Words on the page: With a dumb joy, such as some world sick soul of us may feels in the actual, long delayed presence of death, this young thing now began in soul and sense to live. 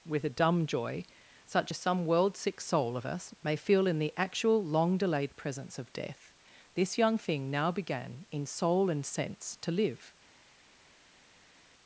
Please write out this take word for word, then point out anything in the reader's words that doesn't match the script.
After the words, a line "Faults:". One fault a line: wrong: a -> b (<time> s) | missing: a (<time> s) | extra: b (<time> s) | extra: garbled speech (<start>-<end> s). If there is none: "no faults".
With a dumb joy, such as some world sick soul of us may feel in the actual, long delayed presence of death, this young thing now began in soul and sense to live.
Faults:
wrong: feels -> feel (3.6 s)